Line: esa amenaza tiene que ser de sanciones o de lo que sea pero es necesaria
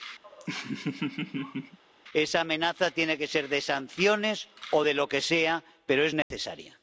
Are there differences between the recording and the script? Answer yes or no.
no